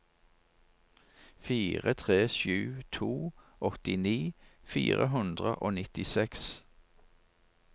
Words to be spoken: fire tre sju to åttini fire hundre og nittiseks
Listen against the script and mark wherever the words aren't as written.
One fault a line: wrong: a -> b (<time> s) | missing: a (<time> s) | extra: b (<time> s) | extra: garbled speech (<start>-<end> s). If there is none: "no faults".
no faults